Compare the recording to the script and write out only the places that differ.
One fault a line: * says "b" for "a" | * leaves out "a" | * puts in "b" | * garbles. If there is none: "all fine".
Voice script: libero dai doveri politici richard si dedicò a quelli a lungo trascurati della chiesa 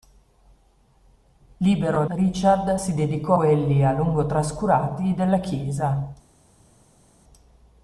* leaves out "dai doveri politici"
* leaves out "a"